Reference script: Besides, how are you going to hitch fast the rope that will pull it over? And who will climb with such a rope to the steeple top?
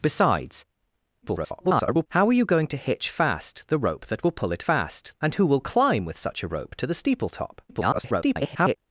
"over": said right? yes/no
no